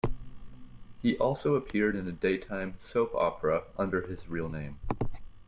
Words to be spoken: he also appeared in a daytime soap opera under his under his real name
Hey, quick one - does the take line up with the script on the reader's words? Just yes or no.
no